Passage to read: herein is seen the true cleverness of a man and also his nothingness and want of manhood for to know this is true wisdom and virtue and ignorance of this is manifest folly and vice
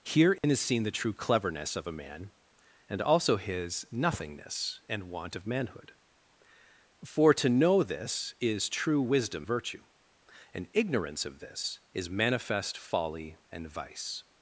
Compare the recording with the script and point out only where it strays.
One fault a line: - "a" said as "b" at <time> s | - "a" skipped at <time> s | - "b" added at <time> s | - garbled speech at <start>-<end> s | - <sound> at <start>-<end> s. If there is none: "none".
- dropout at 0.4-0.4 s
- "and" skipped at 9.4 s